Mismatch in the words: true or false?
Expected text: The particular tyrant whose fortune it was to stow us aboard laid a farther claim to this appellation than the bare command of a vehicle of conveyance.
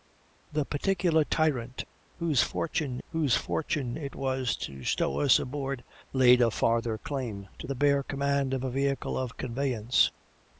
true